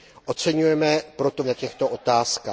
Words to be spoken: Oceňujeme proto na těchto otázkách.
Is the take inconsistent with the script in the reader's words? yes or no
no